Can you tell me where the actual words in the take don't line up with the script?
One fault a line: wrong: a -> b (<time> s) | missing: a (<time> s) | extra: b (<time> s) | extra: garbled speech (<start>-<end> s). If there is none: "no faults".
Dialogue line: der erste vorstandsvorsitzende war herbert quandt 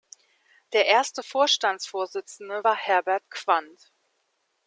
no faults